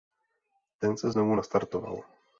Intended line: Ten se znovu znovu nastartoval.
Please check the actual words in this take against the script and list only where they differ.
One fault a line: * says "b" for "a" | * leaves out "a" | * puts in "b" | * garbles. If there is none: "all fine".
* leaves out "znovu"